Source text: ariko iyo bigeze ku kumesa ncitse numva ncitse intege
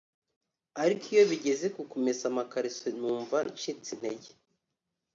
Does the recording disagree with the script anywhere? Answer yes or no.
yes